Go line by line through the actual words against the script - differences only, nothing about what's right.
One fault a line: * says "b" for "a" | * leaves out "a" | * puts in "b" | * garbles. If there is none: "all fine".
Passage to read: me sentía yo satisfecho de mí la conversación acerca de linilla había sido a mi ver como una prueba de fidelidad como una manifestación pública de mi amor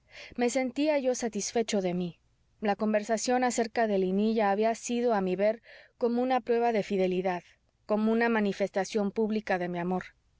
all fine